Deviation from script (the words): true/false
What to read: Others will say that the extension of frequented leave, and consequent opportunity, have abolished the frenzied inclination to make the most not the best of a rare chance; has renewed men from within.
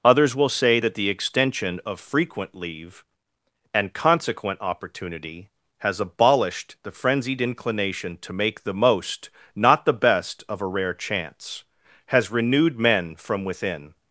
true